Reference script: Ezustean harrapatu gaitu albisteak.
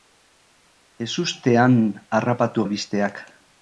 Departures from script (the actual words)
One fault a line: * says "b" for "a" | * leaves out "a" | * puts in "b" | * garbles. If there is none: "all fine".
* leaves out "gaitu"